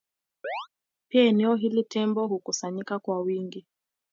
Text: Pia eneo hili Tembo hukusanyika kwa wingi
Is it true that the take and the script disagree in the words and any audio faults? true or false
true